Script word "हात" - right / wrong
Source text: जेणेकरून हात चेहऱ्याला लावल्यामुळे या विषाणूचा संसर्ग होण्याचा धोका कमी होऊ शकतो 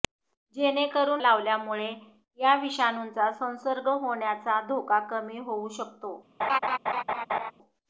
wrong